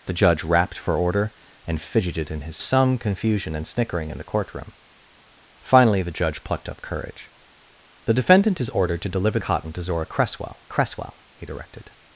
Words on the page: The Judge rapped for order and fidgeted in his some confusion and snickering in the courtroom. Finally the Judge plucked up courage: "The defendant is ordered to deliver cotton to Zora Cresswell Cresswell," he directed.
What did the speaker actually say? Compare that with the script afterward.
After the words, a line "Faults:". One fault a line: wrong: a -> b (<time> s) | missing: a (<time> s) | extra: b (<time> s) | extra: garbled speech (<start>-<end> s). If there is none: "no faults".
The Judge rapped for order and fidgeted in his some confusion and snickering in the courtroom. Finally the Judge plucked up courage: "The defendant is ordered to deliver cotton to Zora Cresswell Cresswell," he directed.
Faults:
no faults